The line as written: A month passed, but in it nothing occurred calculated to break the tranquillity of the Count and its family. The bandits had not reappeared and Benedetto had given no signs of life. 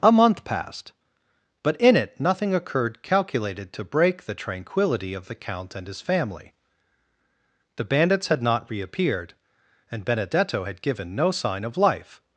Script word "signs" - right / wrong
wrong